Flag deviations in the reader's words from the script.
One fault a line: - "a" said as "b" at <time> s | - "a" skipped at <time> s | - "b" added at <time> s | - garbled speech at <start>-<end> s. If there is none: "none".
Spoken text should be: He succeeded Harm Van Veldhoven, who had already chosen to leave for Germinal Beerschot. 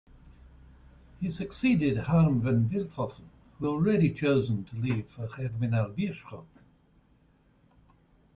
- "had" skipped at 3.7 s